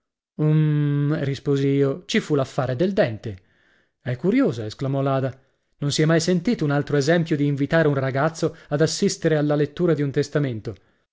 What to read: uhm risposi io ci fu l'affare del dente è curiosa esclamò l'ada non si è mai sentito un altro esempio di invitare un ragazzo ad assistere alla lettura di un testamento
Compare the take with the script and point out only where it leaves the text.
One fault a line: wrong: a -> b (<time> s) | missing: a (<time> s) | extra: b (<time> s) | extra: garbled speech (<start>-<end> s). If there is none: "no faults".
no faults